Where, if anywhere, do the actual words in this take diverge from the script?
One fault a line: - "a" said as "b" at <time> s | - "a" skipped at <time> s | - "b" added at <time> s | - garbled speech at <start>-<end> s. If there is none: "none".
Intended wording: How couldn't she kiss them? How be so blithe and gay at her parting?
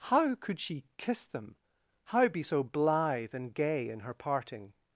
- "couldn't" said as "could" at 0.3 s
- "at" said as "in" at 3.9 s